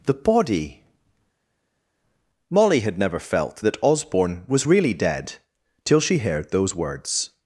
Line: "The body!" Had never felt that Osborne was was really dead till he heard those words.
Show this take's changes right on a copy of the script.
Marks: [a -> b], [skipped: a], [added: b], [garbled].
"The body!" [added: Molly] Had never felt that Osborne was [skipped: was] really dead till [he -> she] heard those words.